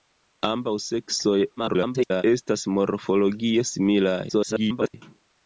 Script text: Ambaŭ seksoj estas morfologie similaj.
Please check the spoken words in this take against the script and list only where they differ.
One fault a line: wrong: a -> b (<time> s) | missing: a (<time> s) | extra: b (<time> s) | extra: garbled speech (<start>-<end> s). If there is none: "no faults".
extra: garbled speech (1.6-2.2 s)
extra: garbled speech (4.3-4.9 s)